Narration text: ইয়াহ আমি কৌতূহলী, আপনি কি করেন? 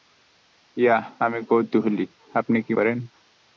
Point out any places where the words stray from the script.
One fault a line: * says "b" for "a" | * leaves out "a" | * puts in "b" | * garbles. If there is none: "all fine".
all fine